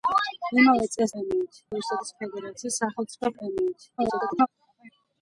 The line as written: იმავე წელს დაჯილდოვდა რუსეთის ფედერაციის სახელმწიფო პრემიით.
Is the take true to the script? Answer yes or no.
no